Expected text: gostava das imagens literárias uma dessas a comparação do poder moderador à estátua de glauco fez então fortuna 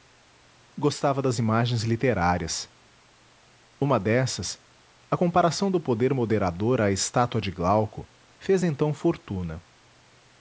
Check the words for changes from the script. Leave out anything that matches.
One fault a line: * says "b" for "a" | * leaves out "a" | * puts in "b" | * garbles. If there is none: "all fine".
all fine